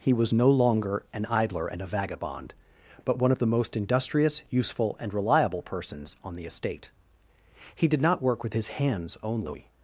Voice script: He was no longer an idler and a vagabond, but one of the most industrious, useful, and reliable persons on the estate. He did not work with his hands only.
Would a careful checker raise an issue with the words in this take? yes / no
no